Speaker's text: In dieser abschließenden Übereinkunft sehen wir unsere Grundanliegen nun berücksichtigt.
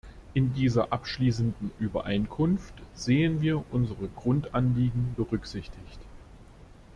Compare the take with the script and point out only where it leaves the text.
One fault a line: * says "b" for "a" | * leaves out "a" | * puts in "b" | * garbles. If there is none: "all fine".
* leaves out "nun"